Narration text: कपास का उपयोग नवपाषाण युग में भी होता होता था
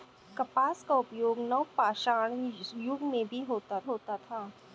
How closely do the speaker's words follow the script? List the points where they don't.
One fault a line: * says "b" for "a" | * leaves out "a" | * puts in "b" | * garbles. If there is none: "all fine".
all fine